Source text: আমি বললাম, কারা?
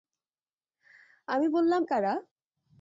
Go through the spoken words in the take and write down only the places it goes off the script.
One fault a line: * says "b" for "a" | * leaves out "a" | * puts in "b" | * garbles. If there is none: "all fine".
all fine